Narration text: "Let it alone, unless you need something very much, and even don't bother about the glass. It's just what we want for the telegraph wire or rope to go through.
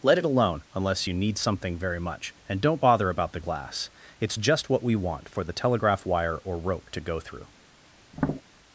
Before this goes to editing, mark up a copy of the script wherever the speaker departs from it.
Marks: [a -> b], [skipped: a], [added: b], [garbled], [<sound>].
"Let it alone, unless you need something very much, and [skipped: even] don't bother about the glass. It's just what we want for the telegraph wire or rope to go through. [tap]